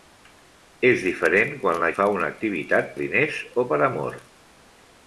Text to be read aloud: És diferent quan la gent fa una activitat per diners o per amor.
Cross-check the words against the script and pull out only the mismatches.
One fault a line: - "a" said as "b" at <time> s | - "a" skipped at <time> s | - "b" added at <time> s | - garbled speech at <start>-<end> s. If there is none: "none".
- "gent" skipped at 1.9 s
- "per" skipped at 2.9 s